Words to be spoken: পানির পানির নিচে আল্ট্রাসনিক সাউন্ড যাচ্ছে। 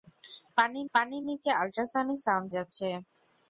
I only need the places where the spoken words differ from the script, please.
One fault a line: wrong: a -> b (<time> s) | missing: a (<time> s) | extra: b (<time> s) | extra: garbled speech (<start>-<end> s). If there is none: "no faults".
no faults